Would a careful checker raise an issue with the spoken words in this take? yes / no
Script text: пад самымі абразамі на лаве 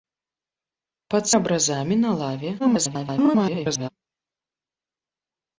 yes